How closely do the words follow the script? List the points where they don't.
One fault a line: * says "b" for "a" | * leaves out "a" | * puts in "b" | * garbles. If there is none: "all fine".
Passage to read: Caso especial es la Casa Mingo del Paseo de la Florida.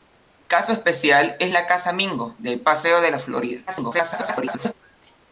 * garbles